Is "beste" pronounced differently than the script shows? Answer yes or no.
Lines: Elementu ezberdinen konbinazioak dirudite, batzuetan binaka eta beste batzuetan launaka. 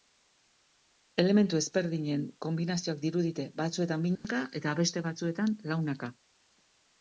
no